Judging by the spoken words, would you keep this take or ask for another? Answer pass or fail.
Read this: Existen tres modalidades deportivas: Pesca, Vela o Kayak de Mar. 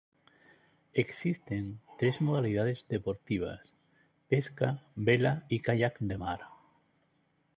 fail